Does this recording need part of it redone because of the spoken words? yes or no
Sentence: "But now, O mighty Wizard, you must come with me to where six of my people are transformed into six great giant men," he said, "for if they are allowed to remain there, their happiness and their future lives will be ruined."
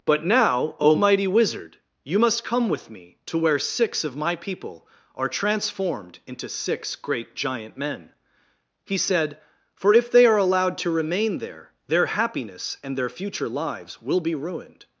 no